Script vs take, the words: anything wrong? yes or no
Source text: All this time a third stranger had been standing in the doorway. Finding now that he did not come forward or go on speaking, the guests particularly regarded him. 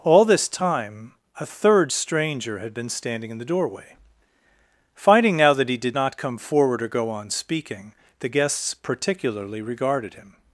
no